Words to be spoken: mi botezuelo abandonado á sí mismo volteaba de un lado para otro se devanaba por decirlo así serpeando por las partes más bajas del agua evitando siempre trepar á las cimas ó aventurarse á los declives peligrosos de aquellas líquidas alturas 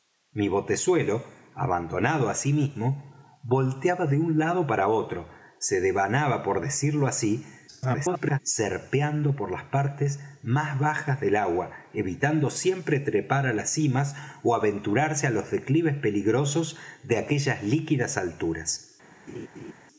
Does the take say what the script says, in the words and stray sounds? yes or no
no